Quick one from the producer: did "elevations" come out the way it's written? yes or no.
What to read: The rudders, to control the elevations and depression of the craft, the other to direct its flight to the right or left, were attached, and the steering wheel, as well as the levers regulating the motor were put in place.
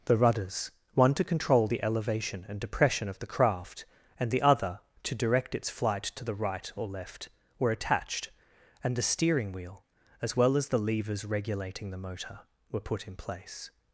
no